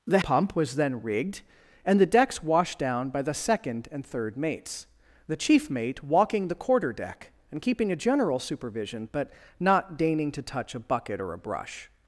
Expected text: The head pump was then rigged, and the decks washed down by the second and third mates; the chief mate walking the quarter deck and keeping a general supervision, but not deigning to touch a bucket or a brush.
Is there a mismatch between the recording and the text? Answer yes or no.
yes